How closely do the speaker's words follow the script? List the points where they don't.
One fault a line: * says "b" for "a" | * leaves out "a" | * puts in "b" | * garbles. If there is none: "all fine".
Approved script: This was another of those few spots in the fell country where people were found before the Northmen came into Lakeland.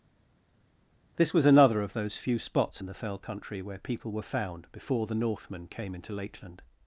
all fine